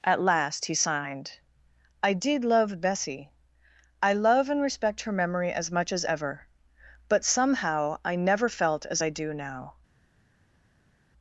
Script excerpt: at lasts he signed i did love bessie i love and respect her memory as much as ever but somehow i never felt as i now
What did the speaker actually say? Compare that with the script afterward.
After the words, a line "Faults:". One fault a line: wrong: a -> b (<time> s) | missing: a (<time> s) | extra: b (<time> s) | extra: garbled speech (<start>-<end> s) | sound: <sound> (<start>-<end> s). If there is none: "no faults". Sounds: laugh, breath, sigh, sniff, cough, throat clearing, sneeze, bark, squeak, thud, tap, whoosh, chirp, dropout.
at last he signed i did love bessie i love and respect her memory as much as ever but somehow i never felt as i do now
Faults:
wrong: lasts -> last (0.2 s)
extra: do (9.1 s)